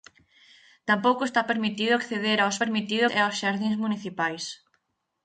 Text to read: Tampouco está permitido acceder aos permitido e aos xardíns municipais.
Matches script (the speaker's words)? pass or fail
pass